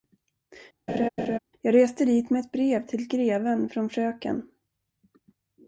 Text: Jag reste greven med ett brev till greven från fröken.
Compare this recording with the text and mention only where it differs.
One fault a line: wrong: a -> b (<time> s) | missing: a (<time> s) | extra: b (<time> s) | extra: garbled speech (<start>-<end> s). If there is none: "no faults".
wrong: greven -> dit (2.1 s)